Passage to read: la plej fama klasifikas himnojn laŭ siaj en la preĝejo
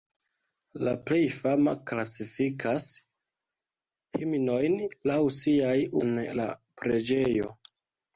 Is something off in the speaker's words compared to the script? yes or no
no